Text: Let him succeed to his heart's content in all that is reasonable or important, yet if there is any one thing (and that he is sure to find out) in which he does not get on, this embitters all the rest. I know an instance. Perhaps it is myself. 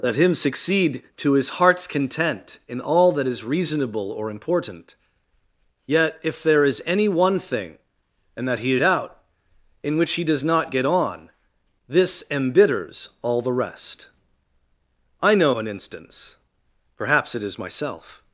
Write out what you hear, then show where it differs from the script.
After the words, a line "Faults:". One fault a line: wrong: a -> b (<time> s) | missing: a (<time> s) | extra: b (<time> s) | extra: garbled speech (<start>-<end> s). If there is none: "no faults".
Let him succeed to his heart's content in all that is reasonable or important, yet if there is any one thing (and that he is out) in which he does not get on, this embitters all the rest. I know an instance. Perhaps it is myself.
Faults:
missing: sure to find (8.8 s)